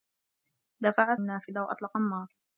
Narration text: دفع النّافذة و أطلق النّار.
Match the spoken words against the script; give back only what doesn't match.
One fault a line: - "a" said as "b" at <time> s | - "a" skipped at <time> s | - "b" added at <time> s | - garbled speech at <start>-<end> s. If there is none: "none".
none